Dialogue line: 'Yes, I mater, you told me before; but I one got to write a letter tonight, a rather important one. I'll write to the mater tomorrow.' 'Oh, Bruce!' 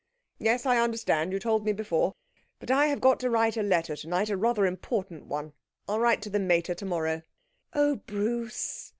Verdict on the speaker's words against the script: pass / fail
fail